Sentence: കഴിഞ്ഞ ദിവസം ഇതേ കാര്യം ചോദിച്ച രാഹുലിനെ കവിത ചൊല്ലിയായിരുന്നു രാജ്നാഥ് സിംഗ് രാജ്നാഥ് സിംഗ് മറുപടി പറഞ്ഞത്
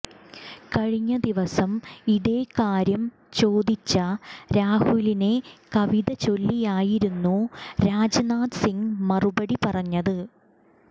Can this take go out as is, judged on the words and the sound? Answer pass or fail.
fail